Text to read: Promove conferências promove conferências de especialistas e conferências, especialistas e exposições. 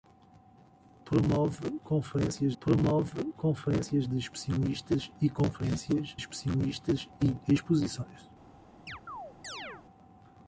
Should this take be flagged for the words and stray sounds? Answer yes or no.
yes